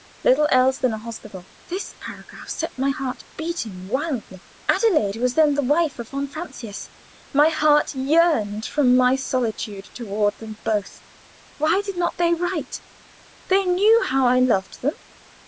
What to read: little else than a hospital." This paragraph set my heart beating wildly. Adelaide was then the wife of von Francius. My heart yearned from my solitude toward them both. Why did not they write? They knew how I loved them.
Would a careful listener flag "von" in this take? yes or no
no